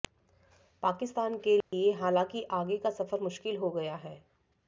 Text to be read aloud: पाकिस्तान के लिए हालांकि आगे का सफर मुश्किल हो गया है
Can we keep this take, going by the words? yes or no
yes